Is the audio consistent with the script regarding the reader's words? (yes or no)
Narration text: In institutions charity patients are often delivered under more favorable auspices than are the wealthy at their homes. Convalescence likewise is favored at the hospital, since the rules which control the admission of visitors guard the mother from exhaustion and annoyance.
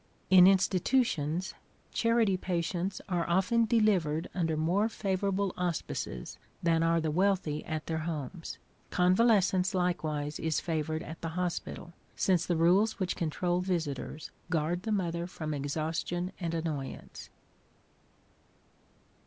no